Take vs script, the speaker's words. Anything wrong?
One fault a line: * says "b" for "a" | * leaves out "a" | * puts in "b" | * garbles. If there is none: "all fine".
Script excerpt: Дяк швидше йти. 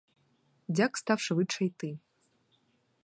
* puts in "став"